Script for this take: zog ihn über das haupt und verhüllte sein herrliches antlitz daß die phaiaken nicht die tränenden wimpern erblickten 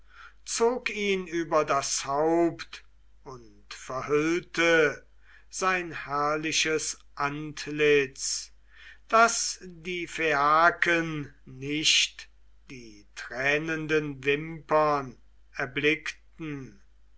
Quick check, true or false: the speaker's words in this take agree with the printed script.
true